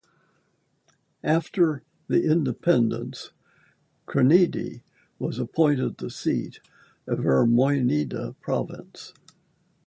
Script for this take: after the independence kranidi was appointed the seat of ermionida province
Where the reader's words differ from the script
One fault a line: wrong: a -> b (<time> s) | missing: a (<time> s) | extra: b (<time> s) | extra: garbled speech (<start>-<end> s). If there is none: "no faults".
no faults